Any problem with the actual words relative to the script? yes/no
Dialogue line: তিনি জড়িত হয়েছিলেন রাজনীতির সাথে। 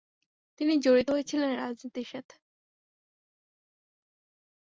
no